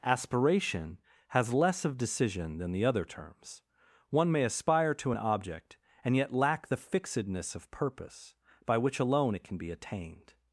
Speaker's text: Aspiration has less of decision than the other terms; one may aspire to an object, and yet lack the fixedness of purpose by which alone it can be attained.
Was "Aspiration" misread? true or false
false